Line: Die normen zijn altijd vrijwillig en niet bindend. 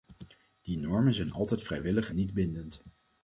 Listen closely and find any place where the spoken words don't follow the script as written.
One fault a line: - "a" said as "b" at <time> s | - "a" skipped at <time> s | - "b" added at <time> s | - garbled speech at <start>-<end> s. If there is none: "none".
- "en" skipped at 2.1 s